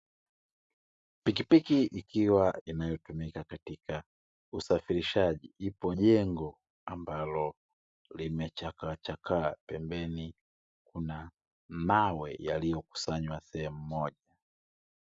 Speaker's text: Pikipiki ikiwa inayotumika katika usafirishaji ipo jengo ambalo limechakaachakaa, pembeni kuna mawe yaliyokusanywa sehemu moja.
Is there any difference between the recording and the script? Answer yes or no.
no